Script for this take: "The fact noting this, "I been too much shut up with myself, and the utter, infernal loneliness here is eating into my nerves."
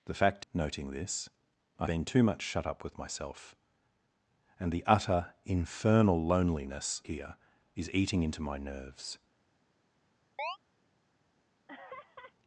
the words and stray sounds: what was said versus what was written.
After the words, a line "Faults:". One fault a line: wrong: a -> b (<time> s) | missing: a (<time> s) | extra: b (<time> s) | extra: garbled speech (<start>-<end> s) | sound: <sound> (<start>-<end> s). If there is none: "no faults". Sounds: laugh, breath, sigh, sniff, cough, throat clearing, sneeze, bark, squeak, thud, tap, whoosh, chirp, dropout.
"The fact noting this, "I been too much shut up with myself, and the utter, infernal loneliness here is eating into my nerves."
Faults:
sound: chirp (10.4-10.6 s)
sound: laugh (11.7-12.3 s)